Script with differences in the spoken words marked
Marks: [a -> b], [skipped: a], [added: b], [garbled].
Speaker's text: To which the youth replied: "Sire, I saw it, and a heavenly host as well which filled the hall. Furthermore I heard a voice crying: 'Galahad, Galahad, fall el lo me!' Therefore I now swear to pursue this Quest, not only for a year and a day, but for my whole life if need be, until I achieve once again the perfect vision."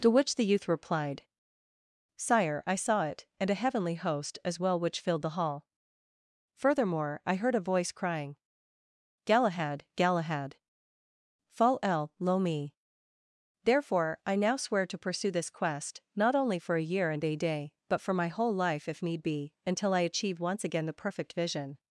To which the youth replied: "Sire, I saw it, and a heavenly host as well which filled the hall. Furthermore I heard a voice crying: 'Galahad, Galahad, fall el lo me!' Therefore I now swear to pursue this Quest, not only for a year and a day, but for my whole life if need be, until I achieve once again the perfect vision."